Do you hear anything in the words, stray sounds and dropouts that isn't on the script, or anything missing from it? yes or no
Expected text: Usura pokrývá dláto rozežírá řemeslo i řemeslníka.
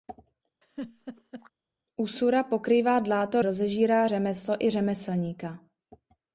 yes